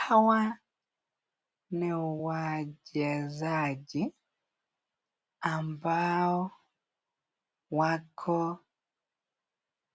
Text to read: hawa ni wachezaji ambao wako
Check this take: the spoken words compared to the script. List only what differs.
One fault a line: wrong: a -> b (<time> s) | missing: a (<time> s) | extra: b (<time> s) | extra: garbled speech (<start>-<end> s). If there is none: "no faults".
no faults